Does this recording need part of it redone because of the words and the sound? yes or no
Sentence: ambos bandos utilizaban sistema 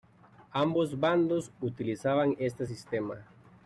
yes